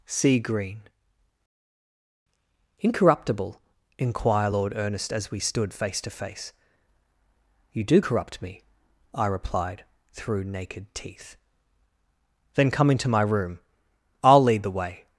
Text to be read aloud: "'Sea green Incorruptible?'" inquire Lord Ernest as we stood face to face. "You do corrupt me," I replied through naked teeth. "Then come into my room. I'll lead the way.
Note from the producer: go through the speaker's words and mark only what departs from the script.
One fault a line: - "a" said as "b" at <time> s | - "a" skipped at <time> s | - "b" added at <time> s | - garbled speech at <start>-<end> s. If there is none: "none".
none